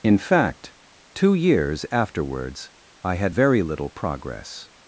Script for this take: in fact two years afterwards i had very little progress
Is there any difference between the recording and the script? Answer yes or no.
no